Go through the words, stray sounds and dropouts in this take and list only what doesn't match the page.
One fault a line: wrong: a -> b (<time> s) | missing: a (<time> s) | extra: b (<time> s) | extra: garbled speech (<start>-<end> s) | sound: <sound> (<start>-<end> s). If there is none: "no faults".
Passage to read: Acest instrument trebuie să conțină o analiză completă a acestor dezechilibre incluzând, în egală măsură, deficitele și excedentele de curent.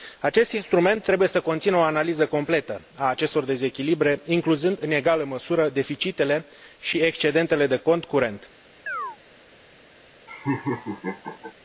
extra: cont (7.8 s)
sound: chirp (8.9-9.2 s)
sound: laugh (10.3-11.5 s)